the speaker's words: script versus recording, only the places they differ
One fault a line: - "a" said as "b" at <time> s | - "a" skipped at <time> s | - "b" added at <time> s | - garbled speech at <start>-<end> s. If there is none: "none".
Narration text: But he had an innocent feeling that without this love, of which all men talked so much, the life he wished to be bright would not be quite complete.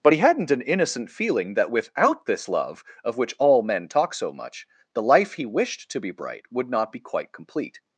- "had" said as "hadn't" at 0.2 s
- "talked" said as "talk" at 3.9 s